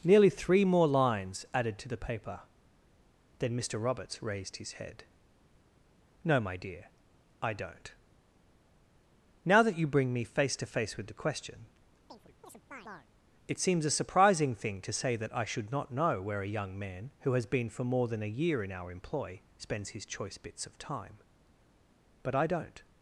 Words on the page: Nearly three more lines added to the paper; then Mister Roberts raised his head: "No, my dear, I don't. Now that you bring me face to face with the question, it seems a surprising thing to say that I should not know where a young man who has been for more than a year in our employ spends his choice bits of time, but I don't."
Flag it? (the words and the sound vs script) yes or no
yes